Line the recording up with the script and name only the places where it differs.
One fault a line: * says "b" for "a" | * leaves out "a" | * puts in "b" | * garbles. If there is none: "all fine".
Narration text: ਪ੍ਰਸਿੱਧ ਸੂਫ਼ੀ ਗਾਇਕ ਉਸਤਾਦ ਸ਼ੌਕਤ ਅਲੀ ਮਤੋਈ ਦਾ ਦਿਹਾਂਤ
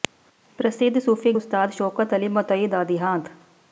* leaves out "ਗਾਇਕ"